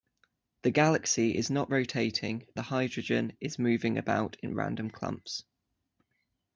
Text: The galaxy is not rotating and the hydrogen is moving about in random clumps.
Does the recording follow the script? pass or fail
fail